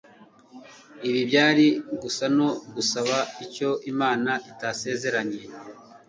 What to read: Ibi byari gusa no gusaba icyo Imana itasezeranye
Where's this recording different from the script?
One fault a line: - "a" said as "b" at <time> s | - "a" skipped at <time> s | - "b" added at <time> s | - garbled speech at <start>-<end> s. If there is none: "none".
none